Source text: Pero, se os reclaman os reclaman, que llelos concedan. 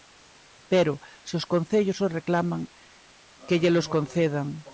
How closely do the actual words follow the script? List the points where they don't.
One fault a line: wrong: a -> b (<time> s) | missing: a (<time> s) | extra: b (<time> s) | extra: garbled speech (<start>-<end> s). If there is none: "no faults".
wrong: reclaman -> concellos (1.4 s)